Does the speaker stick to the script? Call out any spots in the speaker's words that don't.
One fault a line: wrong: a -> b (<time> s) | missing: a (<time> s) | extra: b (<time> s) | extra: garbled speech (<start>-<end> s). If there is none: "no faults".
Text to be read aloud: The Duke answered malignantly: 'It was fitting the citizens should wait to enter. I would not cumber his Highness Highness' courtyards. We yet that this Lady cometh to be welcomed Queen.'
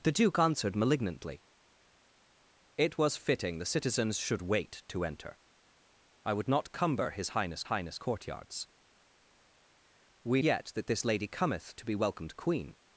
no faults